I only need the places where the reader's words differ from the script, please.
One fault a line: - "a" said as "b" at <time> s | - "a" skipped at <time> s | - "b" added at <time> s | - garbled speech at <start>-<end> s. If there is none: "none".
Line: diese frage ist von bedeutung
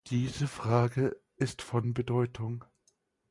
none